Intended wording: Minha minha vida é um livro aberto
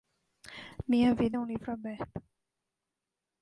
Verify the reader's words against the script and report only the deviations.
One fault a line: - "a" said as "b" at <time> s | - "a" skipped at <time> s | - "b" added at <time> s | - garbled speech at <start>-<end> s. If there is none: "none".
- "minha" skipped at 1.1 s